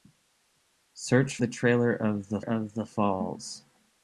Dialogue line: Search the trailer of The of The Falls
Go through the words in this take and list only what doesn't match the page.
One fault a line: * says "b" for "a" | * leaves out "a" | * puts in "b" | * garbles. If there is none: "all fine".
all fine